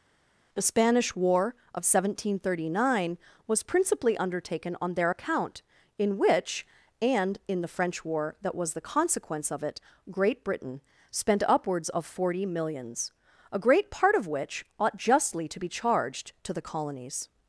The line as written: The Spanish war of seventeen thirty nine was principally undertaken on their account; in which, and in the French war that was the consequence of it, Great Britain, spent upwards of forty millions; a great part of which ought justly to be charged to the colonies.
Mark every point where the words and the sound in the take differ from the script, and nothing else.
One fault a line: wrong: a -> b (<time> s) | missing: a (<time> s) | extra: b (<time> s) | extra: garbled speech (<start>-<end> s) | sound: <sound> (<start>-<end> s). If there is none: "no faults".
no faults